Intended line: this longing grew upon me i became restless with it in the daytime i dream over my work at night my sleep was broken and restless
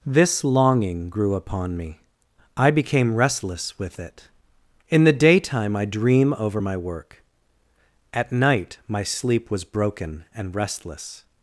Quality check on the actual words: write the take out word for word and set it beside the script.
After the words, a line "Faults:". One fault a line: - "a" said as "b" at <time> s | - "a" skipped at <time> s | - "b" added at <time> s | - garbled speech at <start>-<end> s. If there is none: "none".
this longing grew upon me i became restless with it in the daytime i dream over my work at night my sleep was broken and restless
Faults:
none